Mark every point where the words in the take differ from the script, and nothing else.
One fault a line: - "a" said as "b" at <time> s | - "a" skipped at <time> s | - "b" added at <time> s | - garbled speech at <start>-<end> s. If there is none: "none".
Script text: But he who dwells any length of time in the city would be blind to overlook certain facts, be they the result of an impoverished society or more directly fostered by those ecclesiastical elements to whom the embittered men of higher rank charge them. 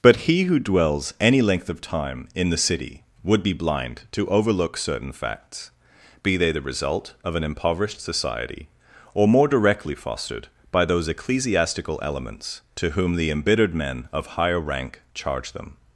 none